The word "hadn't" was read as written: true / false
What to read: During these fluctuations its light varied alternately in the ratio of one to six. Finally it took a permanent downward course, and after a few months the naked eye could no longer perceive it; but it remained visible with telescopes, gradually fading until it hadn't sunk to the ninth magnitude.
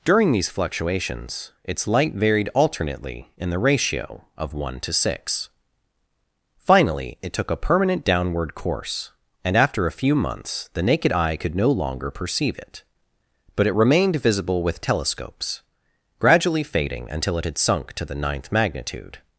false